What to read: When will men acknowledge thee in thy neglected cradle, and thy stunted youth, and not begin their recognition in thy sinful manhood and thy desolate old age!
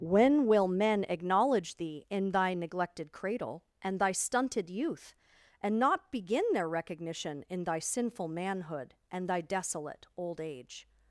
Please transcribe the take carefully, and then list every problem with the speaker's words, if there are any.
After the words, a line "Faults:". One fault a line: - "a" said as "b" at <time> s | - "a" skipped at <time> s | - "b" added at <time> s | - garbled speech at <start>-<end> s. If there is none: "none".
When will men acknowledge thee in thy neglected cradle, and thy stunted youth, and not begin their recognition in thy sinful manhood and thy desolate old age!
Faults:
none